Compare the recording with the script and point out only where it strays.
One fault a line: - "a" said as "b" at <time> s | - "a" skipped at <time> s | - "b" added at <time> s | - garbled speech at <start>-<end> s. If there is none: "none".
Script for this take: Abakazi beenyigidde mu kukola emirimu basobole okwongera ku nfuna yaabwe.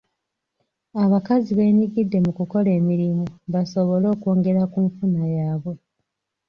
none